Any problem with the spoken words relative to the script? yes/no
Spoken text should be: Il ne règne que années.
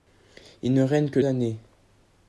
no